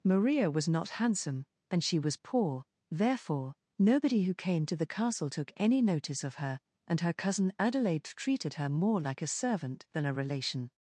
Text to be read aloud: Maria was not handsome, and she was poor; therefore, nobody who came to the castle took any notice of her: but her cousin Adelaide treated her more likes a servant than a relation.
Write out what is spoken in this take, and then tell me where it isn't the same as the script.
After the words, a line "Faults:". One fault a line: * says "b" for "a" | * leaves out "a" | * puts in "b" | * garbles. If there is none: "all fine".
Maria was not handsome, and she was poor; therefore, nobody who came to the castle took any notice of her: and her cousin Adelaide treated her more like a servant than a relation.
Faults:
* says "and" for "but"
* says "like" for "likes"